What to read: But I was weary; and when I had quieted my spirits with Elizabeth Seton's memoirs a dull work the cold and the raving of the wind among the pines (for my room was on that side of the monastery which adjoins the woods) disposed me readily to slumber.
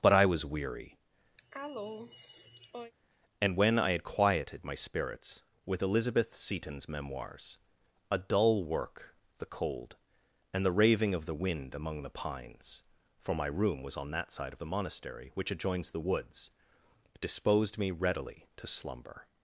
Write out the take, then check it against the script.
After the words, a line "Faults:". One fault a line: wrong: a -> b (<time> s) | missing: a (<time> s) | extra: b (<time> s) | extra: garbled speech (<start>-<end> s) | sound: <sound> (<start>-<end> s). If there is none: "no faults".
But I was weary; and when I had quieted my spirits with Elizabeth Seton's memoirs a dull work the cold and the raving of the wind among the pines (for my room was on that side of the monastery which adjoins the woods) disposed me readily to slumber.
Faults:
sound: cough (1.4-2.9 s)